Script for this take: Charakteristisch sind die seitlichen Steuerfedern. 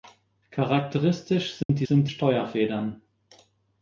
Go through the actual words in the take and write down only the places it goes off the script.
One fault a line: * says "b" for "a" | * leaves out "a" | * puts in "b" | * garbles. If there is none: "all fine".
* says "sind" for "seitlichen"